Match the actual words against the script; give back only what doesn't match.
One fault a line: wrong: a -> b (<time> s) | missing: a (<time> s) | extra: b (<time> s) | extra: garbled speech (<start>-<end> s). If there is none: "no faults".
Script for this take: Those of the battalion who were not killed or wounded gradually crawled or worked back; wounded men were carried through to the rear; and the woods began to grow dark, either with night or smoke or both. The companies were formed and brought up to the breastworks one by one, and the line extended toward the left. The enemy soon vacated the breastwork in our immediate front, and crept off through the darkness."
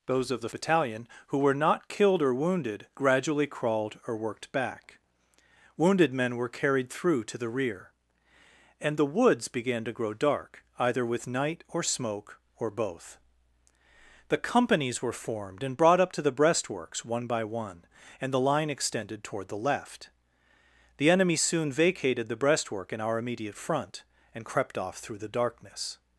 no faults